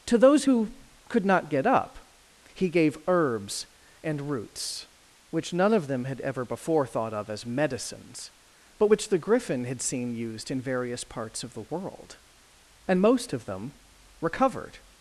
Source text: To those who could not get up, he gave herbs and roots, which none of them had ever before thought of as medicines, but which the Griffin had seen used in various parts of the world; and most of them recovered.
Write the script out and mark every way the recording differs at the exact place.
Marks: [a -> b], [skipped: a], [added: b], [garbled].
To those who could not get up, he gave herbs and roots, which none of them had ever before thought of as medicines, but which the Griffin had seen used in various parts of the world; and most of them recovered.